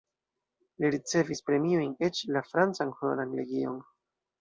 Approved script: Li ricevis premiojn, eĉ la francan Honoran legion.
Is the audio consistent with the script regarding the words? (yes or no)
yes